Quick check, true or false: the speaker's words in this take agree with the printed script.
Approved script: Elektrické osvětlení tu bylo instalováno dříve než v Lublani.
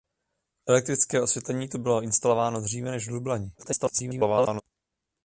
false